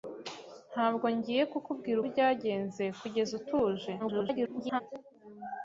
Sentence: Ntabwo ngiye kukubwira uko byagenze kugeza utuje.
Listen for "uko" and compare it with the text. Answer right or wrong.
wrong